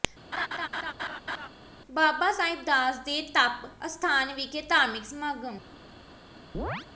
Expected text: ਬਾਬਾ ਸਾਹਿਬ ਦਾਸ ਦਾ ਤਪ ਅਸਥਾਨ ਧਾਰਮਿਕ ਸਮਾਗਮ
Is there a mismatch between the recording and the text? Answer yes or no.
yes